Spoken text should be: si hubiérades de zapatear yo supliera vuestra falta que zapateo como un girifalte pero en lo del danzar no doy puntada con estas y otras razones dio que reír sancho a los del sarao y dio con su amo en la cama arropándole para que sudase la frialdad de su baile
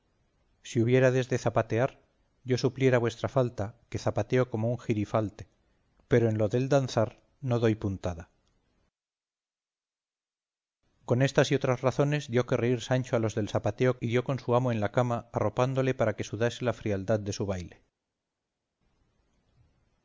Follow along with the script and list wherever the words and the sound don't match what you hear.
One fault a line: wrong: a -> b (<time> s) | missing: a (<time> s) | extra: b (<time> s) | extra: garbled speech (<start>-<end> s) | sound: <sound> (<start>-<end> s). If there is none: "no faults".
wrong: sarao -> zapateo (13.5 s)